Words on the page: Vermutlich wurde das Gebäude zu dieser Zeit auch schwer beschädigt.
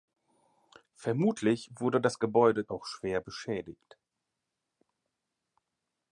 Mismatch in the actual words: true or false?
true